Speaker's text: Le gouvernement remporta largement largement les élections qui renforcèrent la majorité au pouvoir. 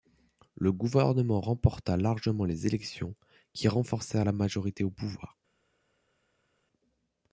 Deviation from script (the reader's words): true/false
true